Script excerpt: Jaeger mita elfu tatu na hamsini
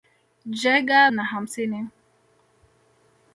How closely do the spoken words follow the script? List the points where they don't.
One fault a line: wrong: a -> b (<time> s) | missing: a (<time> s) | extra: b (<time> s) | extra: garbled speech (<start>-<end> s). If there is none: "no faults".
missing: mita elfu tatu (1.1 s)